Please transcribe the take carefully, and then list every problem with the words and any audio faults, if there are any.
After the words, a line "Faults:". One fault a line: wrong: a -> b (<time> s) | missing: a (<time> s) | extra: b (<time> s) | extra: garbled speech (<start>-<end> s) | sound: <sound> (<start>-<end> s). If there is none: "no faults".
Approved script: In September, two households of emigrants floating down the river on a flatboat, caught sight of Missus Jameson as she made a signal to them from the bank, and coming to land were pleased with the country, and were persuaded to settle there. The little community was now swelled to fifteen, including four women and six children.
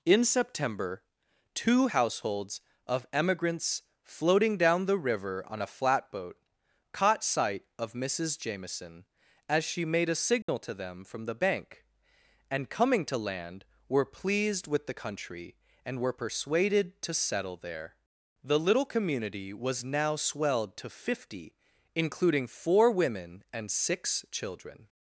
In September, two households of emigrants floating down the river on a flatboat, caught sight of Missus Jameson as she made a signal to them from the bank, and coming to land were pleased with the country, and were persuaded to settle there. The little community was now swelled to fifty, including four women and six children.
Faults:
sound: dropout (10.4-10.5 s)
wrong: fifteen -> fifty (20.9 s)